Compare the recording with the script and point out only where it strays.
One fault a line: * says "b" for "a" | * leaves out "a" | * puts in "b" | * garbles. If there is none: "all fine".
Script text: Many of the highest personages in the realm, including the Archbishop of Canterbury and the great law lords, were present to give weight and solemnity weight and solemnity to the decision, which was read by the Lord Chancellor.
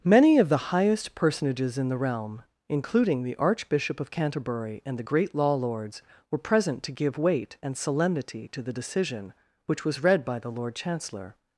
* leaves out "weight and solemnity"